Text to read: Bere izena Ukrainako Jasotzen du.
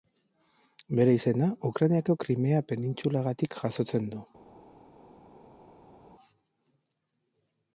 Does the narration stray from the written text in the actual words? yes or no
yes